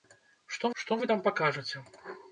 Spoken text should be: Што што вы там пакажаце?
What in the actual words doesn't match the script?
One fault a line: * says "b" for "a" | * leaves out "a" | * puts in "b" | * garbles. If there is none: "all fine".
all fine